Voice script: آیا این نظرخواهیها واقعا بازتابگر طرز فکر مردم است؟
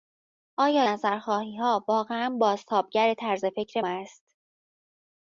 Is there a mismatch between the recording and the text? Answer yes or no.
yes